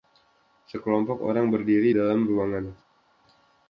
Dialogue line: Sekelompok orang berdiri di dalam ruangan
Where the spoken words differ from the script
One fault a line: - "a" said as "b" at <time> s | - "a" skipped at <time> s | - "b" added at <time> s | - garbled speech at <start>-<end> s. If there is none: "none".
- "di" skipped at 1.9 s